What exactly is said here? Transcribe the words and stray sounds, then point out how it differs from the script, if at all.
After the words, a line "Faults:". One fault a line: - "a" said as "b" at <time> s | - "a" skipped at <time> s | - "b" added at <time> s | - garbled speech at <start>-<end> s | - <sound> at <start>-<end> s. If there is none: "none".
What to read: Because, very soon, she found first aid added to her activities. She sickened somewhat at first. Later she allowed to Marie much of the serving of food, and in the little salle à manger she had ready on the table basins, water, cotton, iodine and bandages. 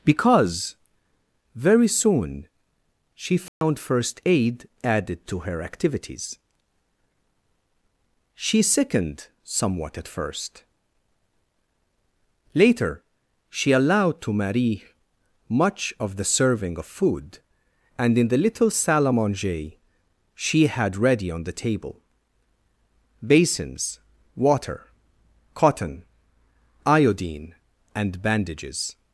Because, very soon, she found first aid added to her activities. She sickened somewhat at first. Later she allowed to Marie much of the serving of food, and in the little salle à manger she had ready on the table basins, water, cotton, iodine and bandages.
Faults:
- dropout at 3.5-3.6 s